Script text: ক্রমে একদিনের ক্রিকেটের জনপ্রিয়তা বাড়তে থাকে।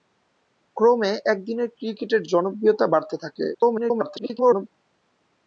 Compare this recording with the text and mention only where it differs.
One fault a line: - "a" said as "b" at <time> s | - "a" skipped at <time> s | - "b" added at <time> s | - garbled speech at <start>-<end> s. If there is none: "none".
- garbled speech at 3.5-4.7 s